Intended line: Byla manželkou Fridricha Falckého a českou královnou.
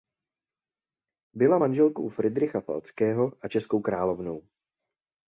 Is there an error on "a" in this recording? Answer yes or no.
no